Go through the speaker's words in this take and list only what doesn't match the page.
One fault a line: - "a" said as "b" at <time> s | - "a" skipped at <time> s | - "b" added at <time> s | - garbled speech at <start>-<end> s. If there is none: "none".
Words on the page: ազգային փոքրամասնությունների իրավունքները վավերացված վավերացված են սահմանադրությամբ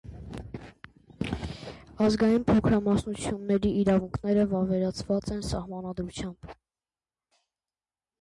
- "վավերացված" skipped at 5.3 s